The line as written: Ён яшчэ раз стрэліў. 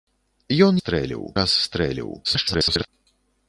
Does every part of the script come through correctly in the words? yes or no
no